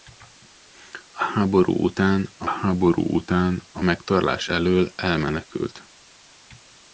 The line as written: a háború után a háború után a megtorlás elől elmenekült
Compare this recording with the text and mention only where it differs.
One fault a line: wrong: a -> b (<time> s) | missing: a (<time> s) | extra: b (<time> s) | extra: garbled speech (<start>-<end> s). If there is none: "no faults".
no faults